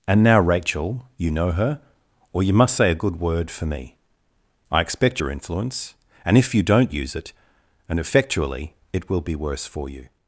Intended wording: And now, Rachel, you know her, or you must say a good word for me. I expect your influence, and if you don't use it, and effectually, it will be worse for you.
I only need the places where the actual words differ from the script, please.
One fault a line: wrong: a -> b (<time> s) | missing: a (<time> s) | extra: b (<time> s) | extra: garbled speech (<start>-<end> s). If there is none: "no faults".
no faults